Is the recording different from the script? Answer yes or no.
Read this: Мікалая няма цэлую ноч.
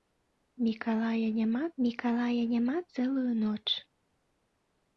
yes